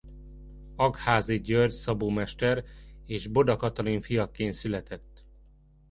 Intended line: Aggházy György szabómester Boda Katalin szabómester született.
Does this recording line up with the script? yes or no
no